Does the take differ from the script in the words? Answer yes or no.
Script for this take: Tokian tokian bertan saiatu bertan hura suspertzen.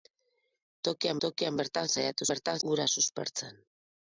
no